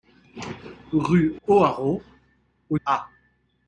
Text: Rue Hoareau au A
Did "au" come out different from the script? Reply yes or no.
no